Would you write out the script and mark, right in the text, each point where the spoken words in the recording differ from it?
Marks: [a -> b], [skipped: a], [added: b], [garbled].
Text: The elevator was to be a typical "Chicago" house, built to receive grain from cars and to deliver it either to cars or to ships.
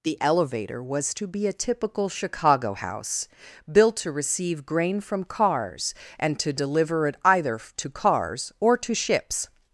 The elevator was to be a typical "Chicago" house, built to receive grain from cars and to deliver it either to cars or to ships.